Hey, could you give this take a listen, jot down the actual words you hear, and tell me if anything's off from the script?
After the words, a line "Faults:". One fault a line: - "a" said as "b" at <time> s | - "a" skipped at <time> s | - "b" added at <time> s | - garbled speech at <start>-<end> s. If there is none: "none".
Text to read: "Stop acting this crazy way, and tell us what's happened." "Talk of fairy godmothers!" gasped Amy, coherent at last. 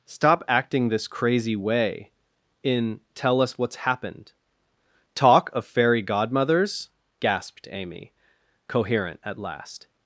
"Stop acting this crazy way, in tell us what's happened." "Talk of fairy godmothers!" gasped Amy, coherent at last.
Faults:
- "and" said as "in" at 2.6 s